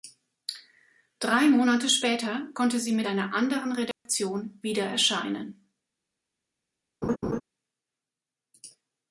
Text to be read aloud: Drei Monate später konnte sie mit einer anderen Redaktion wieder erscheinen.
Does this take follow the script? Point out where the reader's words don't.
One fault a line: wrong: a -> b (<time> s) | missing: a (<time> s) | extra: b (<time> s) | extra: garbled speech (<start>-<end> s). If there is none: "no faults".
no faults